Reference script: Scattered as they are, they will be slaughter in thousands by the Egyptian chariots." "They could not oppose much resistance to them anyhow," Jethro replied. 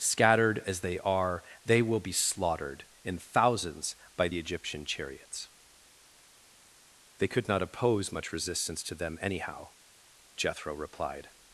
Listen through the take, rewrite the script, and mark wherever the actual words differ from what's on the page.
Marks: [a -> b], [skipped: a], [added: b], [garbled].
Scattered as they are, they will be [slaughter -> slaughtered] in thousands by the Egyptian chariots." "They could not oppose much resistance to them anyhow," Jethro replied.